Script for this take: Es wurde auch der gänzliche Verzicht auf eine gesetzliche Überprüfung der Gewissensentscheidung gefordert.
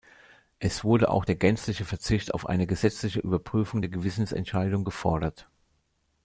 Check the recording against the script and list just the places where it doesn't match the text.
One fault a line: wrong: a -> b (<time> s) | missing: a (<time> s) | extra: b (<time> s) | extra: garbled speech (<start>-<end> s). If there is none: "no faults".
no faults